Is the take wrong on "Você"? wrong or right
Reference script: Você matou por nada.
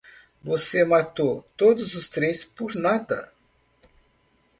right